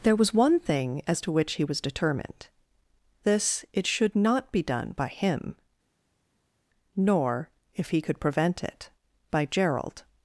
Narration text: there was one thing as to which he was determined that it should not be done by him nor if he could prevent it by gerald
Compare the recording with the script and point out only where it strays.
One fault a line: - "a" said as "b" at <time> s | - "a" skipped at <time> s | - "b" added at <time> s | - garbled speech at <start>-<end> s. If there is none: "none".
- "that" said as "this" at 3.2 s